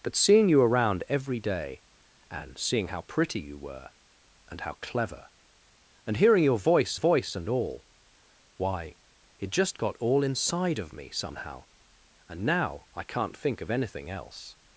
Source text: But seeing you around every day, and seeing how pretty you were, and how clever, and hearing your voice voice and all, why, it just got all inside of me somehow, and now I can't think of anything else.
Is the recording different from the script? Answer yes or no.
no